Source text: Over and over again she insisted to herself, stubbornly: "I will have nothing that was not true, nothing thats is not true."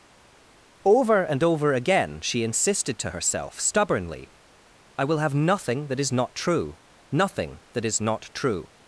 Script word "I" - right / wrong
right